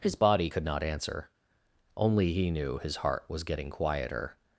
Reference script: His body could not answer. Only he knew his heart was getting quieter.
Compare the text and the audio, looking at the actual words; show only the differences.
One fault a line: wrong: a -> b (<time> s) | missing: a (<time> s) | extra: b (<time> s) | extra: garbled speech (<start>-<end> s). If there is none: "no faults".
no faults